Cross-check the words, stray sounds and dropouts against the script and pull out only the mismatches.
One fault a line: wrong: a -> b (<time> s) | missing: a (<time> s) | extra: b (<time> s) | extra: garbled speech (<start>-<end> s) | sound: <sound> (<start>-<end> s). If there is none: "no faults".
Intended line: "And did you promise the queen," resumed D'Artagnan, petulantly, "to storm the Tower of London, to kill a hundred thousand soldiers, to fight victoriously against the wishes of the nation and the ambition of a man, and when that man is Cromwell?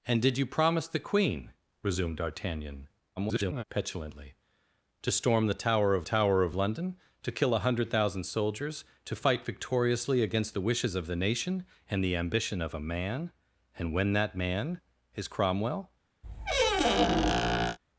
extra: garbled speech (3.2-3.6 s)
extra: Tower of (6.0 s)
sound: squeak (16.2-17.8 s)